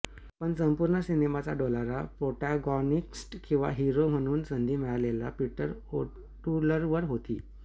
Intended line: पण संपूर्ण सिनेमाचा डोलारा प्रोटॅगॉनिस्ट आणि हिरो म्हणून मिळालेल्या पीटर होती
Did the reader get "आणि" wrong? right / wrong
wrong